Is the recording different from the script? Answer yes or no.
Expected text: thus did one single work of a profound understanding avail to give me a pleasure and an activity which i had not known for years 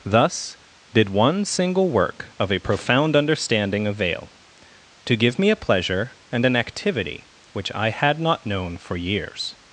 no